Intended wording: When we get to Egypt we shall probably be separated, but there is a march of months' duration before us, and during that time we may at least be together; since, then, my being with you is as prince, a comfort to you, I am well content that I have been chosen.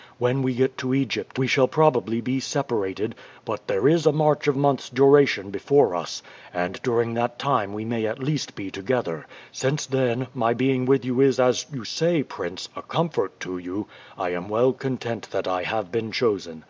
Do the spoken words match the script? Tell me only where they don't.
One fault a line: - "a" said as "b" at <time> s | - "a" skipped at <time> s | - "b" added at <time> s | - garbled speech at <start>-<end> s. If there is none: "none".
- "you say" added at 11.7 s